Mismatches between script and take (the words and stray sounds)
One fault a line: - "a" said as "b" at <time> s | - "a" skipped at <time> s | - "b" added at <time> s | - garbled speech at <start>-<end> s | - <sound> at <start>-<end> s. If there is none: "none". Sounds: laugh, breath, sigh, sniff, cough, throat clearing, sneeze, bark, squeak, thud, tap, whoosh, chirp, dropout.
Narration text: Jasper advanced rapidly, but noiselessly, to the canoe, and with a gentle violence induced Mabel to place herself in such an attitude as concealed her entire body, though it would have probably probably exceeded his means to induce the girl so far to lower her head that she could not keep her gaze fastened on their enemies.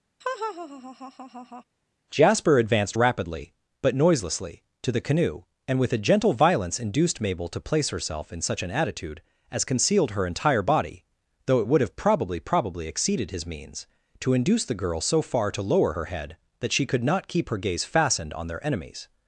- laugh at 0.2-1.6 s